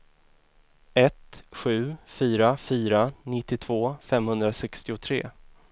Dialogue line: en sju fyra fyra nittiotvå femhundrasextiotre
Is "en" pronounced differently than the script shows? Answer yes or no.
yes